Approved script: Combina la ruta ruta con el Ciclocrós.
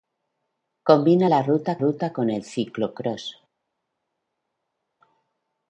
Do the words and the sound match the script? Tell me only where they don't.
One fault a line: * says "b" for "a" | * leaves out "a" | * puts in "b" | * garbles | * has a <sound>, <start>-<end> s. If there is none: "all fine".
all fine